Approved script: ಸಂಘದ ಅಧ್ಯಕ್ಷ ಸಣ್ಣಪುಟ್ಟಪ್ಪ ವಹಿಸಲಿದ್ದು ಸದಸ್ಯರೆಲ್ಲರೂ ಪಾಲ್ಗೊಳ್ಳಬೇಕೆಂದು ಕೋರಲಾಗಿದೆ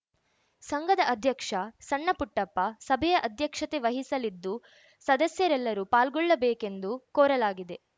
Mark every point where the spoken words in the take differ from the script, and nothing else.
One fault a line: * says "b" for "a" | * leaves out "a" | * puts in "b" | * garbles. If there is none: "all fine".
* puts in "ಸಭೆಯ ಅಧ್ಯಕ್ಷತೆ"